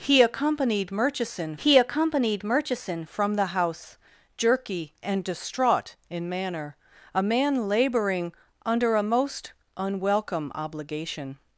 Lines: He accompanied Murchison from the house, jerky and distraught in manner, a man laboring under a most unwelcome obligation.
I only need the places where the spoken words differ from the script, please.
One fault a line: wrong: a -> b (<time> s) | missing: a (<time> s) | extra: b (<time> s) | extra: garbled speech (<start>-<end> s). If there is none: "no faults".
extra: he accompanied Murchison (1.6 s)